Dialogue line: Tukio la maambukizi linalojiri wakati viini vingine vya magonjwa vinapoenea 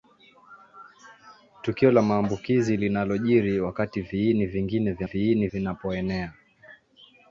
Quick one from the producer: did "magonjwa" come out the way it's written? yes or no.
no